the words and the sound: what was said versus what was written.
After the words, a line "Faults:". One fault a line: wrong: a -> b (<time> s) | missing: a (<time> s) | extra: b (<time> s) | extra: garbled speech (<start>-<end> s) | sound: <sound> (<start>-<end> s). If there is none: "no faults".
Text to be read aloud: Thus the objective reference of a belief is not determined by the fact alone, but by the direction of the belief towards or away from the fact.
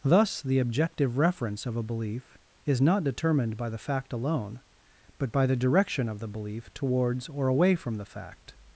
Thus the objective reference of a belief is not determined by the fact alone, but by the direction of the belief towards or away from the fact.
Faults:
no faults